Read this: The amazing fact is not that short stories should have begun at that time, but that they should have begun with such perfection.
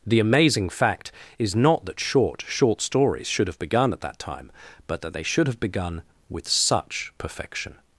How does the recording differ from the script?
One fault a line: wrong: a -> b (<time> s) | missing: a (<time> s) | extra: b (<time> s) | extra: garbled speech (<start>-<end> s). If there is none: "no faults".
extra: short (2.5 s)